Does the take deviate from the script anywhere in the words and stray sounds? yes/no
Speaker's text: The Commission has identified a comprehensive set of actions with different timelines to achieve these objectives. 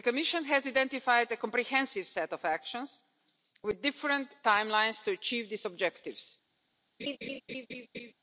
yes